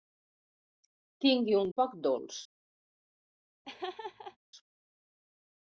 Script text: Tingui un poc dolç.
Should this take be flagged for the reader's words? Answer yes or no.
no